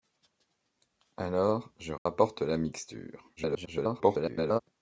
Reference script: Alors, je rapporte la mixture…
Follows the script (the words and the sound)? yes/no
no